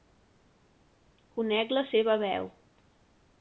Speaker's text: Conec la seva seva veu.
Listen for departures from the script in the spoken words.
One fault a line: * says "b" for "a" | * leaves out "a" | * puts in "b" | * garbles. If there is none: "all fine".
* leaves out "seva"